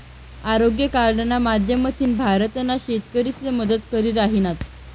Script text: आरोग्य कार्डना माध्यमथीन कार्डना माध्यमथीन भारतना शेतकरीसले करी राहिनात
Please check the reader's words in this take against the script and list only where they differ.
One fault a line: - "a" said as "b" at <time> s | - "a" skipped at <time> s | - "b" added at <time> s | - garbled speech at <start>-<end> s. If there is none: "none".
- "कार्डना माध्यमथीन" skipped at 2.1 s
- "मदत" added at 3.5 s